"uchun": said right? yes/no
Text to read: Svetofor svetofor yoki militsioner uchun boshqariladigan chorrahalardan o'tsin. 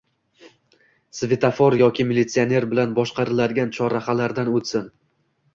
no